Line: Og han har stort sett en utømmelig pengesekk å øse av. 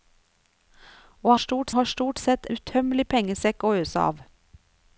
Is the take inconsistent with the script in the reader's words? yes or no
yes